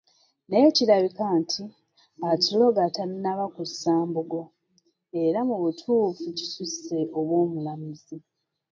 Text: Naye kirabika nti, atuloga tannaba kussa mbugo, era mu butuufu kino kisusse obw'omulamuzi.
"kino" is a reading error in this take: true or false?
true